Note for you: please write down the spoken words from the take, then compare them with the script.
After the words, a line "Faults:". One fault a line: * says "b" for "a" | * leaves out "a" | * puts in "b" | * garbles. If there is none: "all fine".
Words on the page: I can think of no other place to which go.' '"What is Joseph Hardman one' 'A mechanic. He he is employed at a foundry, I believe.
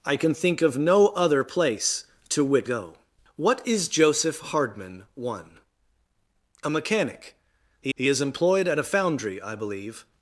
I can think of no other place to which go.' '"What is Joseph Hardman one' 'A mechanic. He he is employed at a foundry, I believe.
Faults:
all fine